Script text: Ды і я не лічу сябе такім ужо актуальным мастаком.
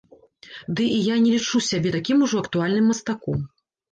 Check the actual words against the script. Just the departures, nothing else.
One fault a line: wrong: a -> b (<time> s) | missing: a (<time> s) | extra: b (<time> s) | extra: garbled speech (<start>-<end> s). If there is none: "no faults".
no faults